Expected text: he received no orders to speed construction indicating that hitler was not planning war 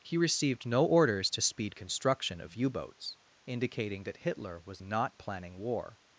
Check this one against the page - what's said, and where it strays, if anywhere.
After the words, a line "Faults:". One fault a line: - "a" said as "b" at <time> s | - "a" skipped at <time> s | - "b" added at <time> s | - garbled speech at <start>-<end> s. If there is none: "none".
he received no orders to speed construction of u boats indicating that hitler was not planning war
Faults:
- "of u boats" added at 2.4 s